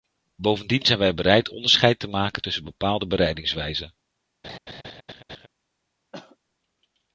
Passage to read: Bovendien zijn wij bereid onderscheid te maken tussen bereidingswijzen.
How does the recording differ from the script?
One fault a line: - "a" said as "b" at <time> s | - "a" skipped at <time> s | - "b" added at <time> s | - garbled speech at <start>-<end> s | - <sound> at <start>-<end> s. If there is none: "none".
- "bepaalde" added at 2.6 s
- laugh at 4.4-5.5 s
- cough at 6.1-6.4 s